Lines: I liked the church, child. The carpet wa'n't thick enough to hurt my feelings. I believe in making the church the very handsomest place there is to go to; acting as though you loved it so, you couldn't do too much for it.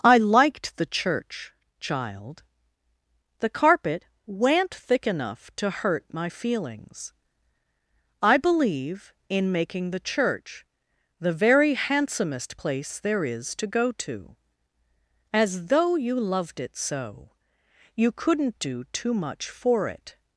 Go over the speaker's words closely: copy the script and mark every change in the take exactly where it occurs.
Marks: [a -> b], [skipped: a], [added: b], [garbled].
I liked the church, child. The carpet wa'n't thick enough to hurt my feelings. I believe in making the church the very handsomest place there is to go to; [skipped: acting] as though you loved it so, you couldn't do too much for it.